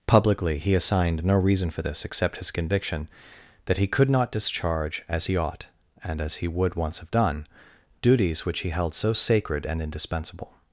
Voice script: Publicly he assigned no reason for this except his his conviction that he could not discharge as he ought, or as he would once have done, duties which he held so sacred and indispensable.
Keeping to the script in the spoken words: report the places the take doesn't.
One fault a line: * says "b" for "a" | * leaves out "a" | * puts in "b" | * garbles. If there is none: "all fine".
* leaves out "his"
* says "and" for "or"